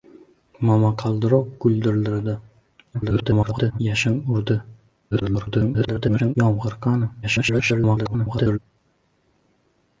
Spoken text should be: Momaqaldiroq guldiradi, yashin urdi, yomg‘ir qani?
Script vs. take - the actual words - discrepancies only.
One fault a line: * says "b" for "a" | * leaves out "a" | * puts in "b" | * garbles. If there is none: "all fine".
* garbles
* garbles
* garbles